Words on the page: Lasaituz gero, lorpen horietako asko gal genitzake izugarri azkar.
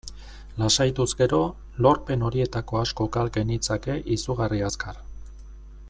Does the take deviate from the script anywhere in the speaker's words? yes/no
no